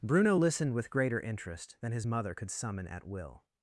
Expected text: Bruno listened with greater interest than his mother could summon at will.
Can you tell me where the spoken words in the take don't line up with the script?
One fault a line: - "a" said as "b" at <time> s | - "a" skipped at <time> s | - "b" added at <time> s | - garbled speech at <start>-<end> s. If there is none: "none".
none